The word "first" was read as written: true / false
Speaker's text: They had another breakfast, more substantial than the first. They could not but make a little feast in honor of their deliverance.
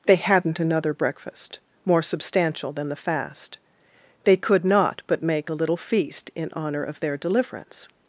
false